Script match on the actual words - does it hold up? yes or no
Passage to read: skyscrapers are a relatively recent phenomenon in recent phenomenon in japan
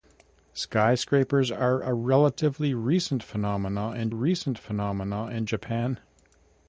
yes